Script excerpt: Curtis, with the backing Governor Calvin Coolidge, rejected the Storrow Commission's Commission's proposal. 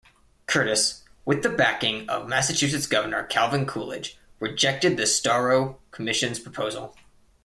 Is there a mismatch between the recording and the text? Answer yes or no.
yes